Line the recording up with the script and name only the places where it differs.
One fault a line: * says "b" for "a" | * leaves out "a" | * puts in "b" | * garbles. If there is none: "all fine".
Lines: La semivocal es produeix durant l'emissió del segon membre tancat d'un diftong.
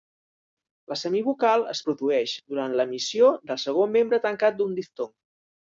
all fine